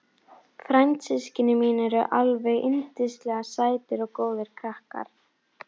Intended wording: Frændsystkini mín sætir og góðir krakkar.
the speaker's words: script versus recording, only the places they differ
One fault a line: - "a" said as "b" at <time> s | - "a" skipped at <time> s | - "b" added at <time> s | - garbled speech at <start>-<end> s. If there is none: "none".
- "eru alveg yndislega" added at 1.9 s